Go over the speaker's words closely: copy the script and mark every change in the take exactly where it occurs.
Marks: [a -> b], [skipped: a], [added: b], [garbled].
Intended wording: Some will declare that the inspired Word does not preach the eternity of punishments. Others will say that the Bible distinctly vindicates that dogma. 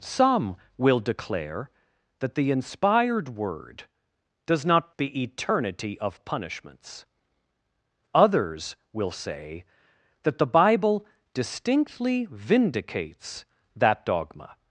Some will declare that the inspired Word does not [skipped: preach] the eternity of punishments. Others will say that the Bible distinctly vindicates that dogma.